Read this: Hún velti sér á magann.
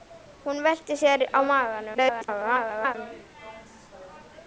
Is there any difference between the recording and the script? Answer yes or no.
yes